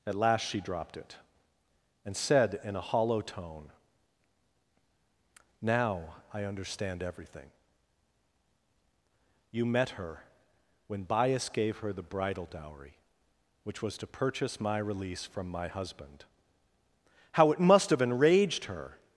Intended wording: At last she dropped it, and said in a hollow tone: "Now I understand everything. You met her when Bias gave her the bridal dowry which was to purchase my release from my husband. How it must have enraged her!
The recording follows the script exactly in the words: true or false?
true